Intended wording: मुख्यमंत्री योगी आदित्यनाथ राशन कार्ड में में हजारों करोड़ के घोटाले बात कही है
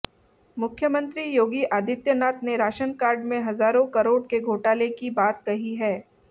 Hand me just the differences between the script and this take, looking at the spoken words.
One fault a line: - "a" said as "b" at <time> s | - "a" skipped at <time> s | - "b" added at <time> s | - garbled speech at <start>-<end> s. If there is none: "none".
- "ने" added at 2.4 s
- "में" skipped at 3.4 s
- "की" added at 4.9 s